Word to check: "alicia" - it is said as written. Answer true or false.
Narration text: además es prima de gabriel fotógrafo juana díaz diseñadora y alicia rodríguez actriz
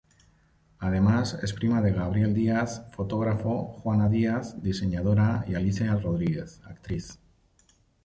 true